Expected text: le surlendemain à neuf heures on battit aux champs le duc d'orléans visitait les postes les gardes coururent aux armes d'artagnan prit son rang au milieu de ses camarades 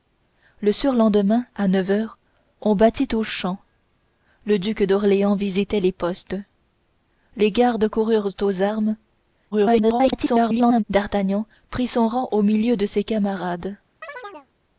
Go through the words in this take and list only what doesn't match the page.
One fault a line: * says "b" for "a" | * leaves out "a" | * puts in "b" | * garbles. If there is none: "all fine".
* garbles